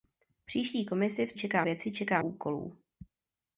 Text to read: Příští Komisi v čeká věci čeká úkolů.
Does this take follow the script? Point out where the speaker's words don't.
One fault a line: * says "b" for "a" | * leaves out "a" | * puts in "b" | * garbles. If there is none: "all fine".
all fine